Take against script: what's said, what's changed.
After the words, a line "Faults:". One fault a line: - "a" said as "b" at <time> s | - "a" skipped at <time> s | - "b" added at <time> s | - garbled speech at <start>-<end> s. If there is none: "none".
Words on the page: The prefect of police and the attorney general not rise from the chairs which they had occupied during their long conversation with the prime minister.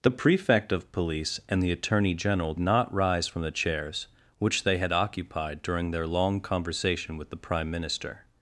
The prefect of police and the attorney general not rise from the chairs which they had occupied during their long conversation with the prime minister.
Faults:
none